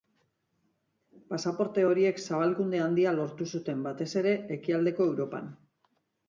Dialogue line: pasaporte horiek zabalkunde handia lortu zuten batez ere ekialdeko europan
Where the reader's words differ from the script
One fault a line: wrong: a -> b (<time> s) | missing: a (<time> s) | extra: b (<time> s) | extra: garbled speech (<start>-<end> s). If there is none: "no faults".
no faults